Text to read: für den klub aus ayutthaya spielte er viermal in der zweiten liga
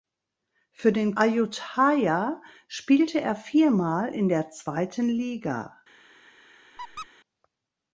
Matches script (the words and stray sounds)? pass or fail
fail